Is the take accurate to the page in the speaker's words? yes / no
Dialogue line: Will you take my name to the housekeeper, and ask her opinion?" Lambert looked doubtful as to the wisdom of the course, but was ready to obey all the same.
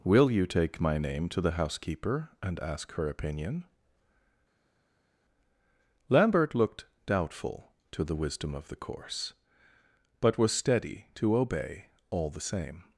no